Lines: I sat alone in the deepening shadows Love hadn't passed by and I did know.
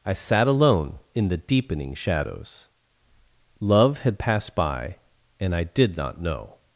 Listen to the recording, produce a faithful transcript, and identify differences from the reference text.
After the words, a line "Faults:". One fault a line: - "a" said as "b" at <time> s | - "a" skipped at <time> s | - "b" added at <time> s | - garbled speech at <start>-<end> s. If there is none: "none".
I sat alone in the deepening shadows Love had passed by and I did not know.
Faults:
- "hadn't" said as "had" at 4.0 s
- "not" added at 6.0 s